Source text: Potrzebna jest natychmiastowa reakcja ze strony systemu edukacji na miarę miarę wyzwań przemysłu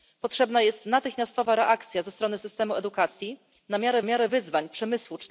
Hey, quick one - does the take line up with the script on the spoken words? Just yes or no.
yes